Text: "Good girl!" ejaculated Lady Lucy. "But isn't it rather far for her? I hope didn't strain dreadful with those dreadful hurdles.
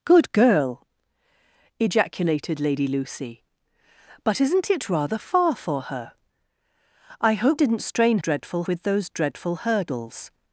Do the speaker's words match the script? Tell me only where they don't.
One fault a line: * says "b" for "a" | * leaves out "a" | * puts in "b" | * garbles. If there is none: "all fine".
all fine